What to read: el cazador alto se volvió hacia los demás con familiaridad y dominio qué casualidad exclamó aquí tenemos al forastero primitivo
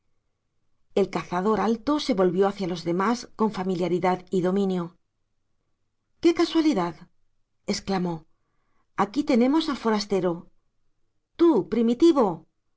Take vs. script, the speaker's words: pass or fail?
fail